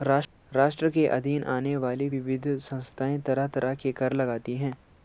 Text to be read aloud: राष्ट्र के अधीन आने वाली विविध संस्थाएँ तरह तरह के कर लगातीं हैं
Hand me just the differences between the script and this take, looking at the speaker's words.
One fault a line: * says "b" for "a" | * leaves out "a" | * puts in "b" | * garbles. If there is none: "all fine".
all fine